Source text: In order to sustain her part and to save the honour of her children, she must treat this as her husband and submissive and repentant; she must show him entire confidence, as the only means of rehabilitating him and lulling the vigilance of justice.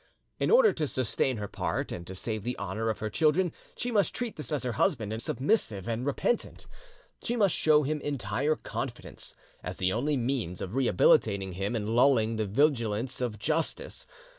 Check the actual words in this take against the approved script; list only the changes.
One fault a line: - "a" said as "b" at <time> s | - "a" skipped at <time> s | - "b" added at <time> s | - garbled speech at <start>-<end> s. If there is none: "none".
none